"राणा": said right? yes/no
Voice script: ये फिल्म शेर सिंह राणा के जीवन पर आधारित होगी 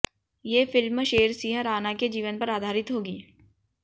yes